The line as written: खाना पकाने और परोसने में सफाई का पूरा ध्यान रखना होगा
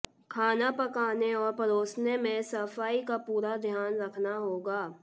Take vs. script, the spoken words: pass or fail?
pass